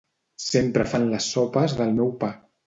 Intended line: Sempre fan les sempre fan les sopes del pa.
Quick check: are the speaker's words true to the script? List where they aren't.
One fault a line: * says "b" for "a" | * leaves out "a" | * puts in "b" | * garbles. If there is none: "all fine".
* leaves out "sempre fan les"
* puts in "meu"